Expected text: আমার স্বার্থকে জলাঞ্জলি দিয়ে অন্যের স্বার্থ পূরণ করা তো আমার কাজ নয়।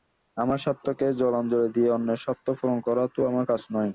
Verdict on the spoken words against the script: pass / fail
pass